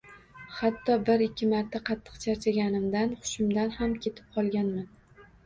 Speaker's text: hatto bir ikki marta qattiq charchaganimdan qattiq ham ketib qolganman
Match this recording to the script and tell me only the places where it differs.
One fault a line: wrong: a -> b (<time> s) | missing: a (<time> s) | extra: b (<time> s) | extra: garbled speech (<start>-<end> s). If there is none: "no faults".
wrong: qattiq -> hushimdan (3.3 s)